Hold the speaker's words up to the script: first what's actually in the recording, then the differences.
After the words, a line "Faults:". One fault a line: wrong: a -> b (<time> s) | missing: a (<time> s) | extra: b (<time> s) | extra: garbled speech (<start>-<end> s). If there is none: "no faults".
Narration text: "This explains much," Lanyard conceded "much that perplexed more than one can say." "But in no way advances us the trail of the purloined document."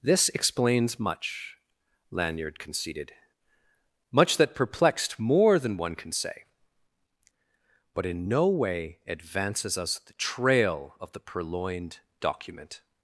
"This explains much," Lanyard conceded "much that perplexed more than one can say." "But in no way advances us the trail of the purloined document."
Faults:
no faults